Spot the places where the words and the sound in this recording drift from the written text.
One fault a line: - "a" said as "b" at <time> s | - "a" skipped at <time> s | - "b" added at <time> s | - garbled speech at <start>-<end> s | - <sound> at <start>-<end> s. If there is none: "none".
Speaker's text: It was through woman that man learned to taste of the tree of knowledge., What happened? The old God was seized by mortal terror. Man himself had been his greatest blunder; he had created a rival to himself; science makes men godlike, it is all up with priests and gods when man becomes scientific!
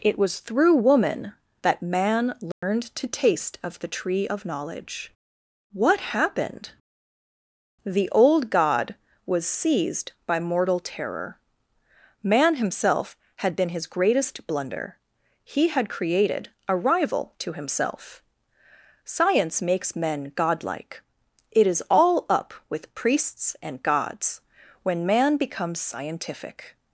- dropout at 2.5-2.6 s